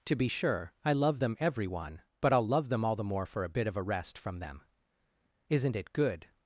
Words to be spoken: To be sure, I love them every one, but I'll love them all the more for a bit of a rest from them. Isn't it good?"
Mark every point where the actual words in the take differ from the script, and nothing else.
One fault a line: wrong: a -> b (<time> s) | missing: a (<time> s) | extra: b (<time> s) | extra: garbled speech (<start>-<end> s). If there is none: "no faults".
no faults